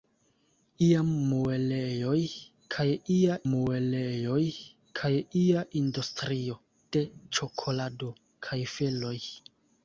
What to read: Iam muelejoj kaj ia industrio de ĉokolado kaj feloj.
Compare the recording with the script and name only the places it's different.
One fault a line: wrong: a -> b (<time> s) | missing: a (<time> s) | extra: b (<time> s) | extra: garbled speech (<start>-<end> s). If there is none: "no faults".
extra: muelejoj kaj ia (3.5 s)